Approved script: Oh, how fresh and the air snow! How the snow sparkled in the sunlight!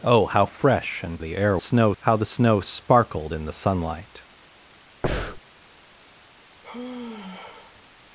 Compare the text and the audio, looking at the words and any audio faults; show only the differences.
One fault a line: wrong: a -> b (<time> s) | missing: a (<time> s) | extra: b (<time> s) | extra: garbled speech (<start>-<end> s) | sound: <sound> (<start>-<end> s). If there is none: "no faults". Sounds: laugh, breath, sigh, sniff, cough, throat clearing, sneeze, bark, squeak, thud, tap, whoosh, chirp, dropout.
sound: breath (5.0-5.4 s)
sound: sigh (6.6-7.8 s)